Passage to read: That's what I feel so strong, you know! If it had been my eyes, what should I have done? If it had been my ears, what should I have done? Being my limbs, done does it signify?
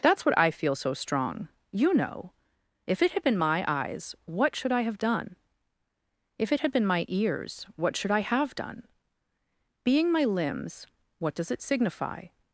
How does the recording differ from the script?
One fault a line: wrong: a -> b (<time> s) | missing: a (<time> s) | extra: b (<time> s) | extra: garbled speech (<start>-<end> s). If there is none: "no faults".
wrong: done -> what (11.2 s)